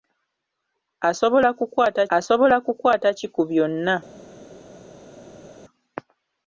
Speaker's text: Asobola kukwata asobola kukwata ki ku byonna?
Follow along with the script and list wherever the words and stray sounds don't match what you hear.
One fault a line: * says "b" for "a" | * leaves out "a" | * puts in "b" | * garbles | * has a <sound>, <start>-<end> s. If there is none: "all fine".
all fine